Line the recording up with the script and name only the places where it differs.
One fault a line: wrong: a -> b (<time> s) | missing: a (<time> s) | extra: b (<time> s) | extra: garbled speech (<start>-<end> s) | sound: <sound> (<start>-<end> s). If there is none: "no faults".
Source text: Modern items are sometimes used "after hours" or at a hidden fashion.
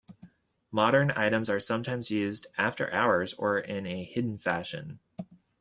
wrong: at -> in (3.6 s)